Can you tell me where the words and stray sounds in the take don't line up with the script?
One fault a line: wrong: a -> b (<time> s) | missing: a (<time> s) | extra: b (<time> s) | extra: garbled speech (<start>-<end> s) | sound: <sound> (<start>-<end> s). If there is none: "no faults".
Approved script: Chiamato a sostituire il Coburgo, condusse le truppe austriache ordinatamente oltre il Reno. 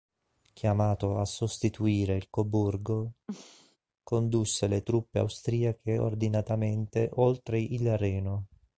sound: throat clearing (3.3-3.8 s)